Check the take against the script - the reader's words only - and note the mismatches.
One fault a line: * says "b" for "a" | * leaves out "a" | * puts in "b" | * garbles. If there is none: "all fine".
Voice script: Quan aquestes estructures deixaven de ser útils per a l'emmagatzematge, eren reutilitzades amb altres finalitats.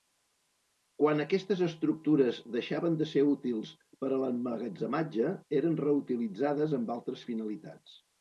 all fine